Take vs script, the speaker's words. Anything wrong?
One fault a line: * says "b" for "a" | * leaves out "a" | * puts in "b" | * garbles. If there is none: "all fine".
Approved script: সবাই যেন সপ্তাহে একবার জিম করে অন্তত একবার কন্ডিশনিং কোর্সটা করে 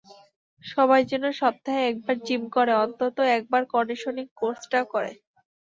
all fine